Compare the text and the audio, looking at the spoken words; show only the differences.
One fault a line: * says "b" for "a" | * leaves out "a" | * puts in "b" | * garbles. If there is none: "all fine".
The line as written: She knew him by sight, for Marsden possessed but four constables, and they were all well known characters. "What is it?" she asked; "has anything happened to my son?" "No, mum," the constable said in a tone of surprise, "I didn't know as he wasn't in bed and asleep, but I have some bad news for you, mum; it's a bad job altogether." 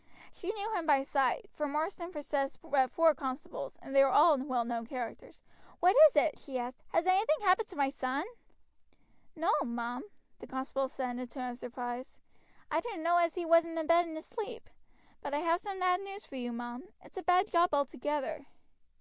all fine